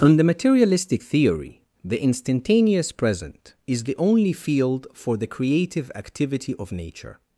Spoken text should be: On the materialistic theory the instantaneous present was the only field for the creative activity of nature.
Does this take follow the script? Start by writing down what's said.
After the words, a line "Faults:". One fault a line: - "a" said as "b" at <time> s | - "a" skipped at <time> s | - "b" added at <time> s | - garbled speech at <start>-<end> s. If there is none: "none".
On the materialistic theory the instantaneous present is the only field for the creative activity of nature.
Faults:
- "was" said as "is" at 3.7 s